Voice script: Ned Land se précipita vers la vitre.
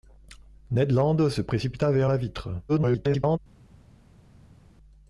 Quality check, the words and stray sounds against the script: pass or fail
fail